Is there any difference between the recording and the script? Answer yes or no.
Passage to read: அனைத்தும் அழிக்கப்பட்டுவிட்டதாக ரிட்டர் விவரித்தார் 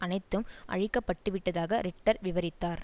no